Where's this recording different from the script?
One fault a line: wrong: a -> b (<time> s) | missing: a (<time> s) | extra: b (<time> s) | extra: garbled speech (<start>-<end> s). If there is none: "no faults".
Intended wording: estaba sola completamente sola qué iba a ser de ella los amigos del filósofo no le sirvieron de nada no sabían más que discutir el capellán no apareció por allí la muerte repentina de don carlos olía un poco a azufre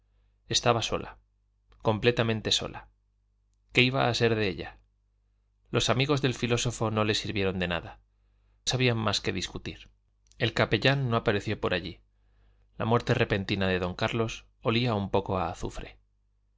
missing: no (8.0 s)